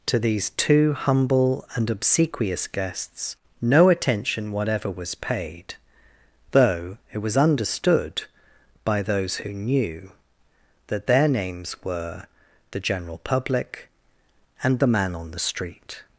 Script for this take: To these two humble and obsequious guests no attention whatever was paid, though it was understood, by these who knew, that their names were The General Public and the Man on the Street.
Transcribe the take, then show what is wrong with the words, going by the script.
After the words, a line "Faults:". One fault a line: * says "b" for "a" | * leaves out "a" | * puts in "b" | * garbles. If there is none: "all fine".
To these two humble and obsequious guests no attention whatever was paid, though it was understood, by those who knew, that their names were The General Public and the Man on the Street.
Faults:
* says "those" for "these"